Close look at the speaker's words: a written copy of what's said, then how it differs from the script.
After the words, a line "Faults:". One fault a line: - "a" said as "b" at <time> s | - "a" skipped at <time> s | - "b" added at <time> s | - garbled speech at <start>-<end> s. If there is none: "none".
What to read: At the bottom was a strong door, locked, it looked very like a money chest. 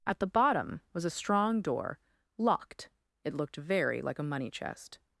At the bottom was a strong door, locked, it looked very like a money chest.
Faults:
none